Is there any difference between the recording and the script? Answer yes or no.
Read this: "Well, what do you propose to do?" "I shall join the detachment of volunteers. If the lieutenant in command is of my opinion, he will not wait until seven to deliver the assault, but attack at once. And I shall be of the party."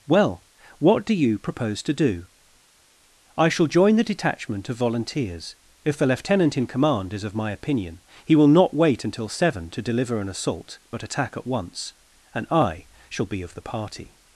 yes